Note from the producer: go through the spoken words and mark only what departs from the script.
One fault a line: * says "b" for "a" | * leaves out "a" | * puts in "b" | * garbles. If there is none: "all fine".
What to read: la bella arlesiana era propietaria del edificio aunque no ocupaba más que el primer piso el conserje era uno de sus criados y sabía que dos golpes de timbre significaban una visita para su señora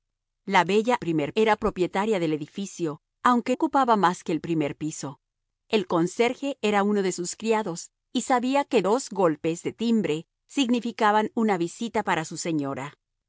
* says "primer" for "arlesiana"
* leaves out "no"